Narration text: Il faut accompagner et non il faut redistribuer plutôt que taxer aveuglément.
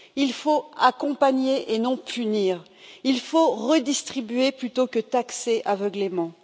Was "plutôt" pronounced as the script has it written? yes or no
yes